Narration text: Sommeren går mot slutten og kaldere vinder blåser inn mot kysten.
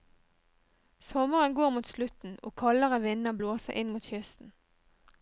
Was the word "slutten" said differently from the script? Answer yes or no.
no